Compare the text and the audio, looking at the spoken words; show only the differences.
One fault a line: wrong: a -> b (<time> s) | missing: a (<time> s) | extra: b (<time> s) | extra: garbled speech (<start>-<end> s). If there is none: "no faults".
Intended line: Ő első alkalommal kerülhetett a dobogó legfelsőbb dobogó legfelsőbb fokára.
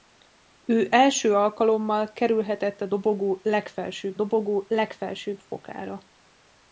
no faults